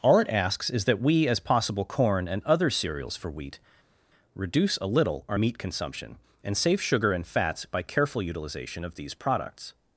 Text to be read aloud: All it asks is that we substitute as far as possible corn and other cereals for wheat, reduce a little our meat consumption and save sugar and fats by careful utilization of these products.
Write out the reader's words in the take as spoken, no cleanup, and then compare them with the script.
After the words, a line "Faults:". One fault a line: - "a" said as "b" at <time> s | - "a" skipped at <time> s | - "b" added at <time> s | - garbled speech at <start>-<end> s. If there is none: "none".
All it asks is that we as possible corn and other cereals for wheat, reduce a little our meat consumption and save sugar and fats by careful utilization of these products.
Faults:
- "substitute as far" skipped at 1.3 s